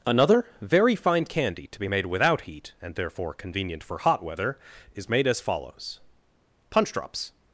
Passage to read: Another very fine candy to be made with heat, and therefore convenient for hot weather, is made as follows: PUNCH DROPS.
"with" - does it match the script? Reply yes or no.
no